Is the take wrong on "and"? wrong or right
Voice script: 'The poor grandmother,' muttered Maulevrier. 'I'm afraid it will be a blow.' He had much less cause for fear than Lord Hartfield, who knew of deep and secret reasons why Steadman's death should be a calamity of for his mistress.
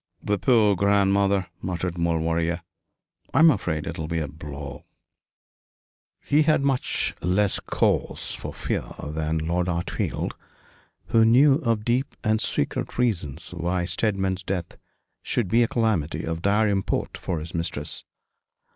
right